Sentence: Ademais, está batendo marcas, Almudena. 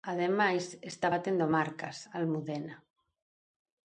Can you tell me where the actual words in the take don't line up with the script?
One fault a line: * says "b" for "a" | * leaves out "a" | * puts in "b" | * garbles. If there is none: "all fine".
all fine